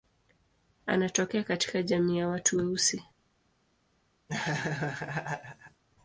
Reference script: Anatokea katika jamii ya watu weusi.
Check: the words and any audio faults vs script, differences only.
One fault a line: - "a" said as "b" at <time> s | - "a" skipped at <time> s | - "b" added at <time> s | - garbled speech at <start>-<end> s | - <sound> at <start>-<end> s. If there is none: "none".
- laugh at 4.3-5.8 s